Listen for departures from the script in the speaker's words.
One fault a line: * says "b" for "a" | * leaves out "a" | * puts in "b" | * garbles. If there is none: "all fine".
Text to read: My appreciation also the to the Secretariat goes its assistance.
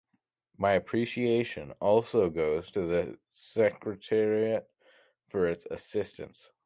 * says "goes" for "the"
* says "for" for "goes"